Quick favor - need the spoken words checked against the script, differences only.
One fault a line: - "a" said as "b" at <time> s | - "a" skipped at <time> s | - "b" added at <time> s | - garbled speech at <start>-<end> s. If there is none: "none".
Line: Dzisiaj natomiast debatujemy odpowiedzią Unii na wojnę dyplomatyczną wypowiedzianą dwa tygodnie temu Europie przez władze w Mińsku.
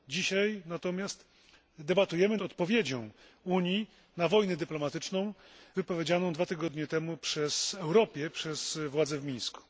none